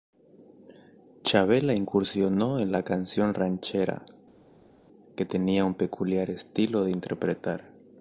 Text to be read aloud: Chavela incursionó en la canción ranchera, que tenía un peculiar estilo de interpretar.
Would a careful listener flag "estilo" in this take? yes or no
no